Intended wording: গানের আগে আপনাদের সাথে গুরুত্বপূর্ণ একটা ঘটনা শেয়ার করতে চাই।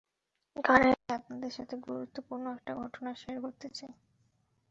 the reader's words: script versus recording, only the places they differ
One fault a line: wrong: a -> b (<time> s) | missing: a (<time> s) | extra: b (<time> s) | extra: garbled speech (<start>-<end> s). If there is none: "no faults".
no faults